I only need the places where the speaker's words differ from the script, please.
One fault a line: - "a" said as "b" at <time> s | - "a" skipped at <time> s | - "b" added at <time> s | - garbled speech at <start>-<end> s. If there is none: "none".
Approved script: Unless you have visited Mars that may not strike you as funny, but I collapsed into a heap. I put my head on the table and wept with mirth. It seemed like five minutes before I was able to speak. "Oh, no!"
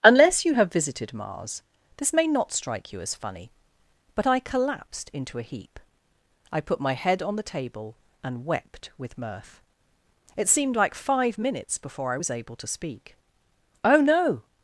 - "that" said as "this" at 2.0 s